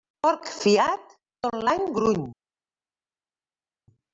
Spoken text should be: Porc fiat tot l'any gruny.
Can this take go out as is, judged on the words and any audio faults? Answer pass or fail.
pass